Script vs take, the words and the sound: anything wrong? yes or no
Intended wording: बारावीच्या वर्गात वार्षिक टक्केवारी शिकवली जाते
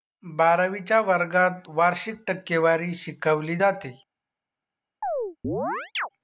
yes